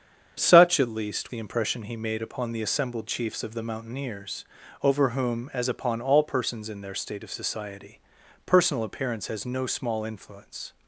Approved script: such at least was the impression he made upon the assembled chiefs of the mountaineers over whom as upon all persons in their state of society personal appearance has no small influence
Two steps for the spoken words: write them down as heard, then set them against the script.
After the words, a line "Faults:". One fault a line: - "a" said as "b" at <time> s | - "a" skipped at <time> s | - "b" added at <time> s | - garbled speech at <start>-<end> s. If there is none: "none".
such at least the impression he made upon the assembled chiefs of the mountaineers over whom as upon all persons in their state of society personal appearance has no small influence
Faults:
- "was" skipped at 1.3 s